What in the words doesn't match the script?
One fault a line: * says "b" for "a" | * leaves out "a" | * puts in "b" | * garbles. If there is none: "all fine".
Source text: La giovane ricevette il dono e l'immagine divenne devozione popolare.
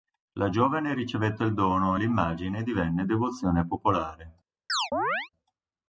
all fine